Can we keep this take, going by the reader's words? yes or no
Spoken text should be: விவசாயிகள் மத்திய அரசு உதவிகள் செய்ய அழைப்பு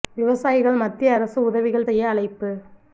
yes